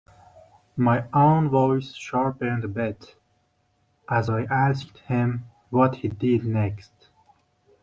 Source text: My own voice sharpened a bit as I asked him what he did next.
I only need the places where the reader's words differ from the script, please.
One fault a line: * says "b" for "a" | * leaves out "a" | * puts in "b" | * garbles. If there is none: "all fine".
all fine